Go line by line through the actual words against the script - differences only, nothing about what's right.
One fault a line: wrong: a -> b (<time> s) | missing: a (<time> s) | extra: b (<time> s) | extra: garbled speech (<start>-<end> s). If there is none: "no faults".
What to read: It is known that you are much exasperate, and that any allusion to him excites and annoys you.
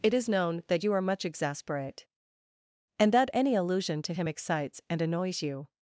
no faults